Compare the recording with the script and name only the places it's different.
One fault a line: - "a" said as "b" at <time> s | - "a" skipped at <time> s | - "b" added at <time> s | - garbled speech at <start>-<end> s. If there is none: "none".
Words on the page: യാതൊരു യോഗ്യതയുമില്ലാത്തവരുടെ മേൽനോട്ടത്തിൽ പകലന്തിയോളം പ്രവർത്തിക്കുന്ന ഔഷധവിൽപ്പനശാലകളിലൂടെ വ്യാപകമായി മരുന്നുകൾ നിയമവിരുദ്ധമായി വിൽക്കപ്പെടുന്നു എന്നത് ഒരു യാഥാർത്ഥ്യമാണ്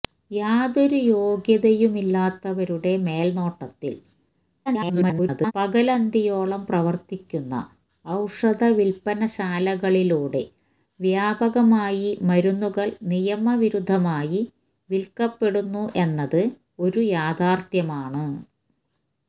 - garbled speech at 4.7-5.5 s